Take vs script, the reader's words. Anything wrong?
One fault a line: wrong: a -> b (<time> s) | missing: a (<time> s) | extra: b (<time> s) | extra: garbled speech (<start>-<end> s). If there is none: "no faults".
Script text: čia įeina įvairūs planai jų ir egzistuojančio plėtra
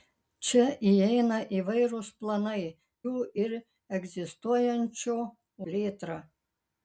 no faults